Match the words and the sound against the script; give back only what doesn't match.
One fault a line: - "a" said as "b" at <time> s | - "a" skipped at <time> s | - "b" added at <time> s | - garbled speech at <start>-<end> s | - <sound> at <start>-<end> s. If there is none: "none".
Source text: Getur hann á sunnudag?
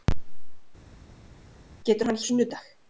none